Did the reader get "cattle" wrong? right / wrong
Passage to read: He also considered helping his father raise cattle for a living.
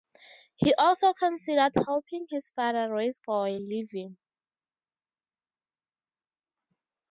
wrong